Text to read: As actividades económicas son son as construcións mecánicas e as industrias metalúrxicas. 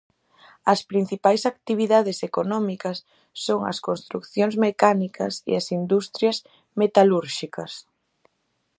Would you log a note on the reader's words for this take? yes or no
yes